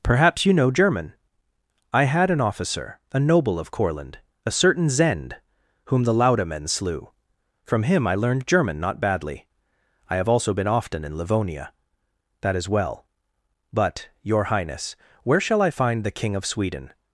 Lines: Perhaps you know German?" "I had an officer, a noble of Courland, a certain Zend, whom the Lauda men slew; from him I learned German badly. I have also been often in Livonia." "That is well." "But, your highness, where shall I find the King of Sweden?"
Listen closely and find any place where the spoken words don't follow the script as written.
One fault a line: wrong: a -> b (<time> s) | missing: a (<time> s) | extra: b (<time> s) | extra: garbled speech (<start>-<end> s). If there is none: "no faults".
extra: not (8.8 s)